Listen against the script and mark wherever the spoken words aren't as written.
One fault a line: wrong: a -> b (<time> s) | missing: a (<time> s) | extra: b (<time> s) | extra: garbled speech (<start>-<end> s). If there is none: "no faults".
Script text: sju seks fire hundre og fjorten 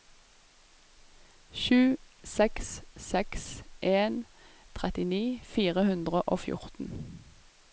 extra: seks en trettini (3.1 s)